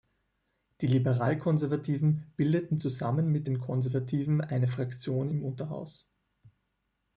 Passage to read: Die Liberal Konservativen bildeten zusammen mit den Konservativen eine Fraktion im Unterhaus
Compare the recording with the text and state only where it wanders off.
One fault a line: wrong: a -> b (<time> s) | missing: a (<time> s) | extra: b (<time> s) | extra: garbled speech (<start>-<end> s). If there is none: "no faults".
no faults